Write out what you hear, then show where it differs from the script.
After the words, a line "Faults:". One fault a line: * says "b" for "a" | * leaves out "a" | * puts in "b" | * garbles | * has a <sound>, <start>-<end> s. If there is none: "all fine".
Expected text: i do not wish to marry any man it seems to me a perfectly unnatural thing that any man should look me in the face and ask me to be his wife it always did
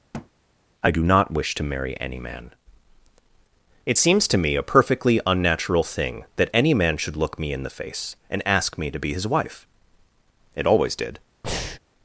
i do not wish to marry any man it seems to me a perfectly unnatural thing that any man should look me in the face and ask me to be his wife it always did
Faults:
* has a thud, 0.1-0.3 s
* has a breath, 11.4-11.8 s